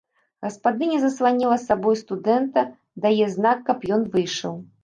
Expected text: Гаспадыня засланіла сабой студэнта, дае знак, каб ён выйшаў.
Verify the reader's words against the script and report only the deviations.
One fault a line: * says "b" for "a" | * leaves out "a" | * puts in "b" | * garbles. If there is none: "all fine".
all fine